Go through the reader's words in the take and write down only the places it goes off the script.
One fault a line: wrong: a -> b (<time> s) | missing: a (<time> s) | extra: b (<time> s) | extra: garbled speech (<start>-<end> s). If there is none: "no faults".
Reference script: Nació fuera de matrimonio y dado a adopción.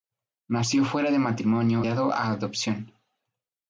missing: y (1.9 s)